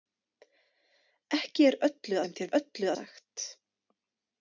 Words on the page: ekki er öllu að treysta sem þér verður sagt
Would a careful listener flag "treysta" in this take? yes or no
yes